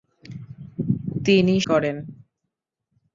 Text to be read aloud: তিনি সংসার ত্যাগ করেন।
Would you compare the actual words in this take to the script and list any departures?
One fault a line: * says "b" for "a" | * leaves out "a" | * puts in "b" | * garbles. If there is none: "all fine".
* leaves out "সংসার ত্যাগ"